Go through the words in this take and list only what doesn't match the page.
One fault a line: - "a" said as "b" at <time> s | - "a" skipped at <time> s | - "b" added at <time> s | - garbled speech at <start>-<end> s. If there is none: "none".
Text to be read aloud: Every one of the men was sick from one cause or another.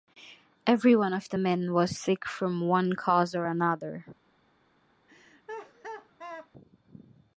none